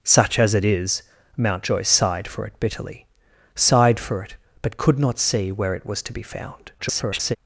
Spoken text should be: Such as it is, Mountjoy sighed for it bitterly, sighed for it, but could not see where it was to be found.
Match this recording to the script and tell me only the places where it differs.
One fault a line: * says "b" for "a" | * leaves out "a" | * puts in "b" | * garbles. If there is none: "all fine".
* garbles